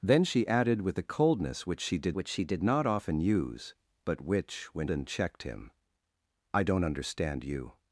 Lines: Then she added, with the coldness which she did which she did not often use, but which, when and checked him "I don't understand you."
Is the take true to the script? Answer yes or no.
yes